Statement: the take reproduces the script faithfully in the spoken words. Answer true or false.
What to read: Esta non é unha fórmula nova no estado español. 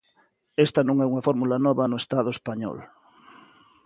true